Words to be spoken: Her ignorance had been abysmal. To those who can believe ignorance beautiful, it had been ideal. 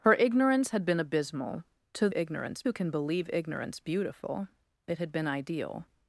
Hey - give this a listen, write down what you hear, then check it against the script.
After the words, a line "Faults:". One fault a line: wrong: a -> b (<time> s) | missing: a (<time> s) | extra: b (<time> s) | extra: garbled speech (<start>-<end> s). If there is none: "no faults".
Her ignorance had been abysmal. To ignorance who can believe ignorance beautiful, it had been ideal.
Faults:
wrong: those -> ignorance (2.1 s)